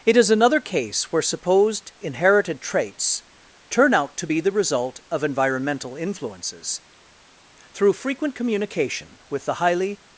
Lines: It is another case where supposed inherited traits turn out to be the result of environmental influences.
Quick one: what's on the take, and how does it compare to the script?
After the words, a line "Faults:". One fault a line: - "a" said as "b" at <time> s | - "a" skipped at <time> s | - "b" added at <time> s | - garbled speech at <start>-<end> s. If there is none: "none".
It is another case where supposed inherited traits turn out to be the result of environmental influences. Through frequent communication with the highly
Faults:
- "Through frequent communication with the highly" added at 7.7 s